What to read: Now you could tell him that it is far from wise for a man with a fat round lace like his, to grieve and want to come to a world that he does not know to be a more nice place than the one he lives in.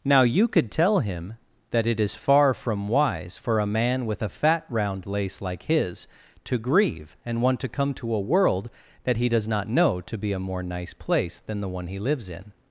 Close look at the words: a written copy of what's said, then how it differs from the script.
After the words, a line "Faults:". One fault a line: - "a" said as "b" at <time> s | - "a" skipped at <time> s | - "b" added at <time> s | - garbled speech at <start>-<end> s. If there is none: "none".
Now you could tell him that it is far from wise for a man with a fat round lace like his, to grieve and want to come to a world that he does not know to be a more nice place than the one he lives in.
Faults:
none